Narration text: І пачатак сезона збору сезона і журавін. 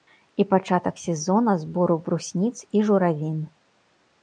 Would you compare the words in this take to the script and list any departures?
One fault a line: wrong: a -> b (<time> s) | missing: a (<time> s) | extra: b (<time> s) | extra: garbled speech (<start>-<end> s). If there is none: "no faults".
wrong: сезона -> брусніц (2.0 s)